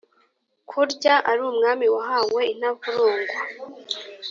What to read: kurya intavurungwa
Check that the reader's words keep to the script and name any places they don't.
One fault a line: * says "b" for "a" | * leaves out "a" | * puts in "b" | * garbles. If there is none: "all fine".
* puts in "ari umwami wahawe"